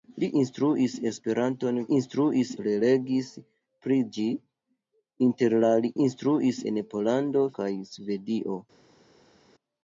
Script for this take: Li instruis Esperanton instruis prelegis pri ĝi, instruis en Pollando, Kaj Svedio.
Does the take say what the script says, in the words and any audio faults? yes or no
yes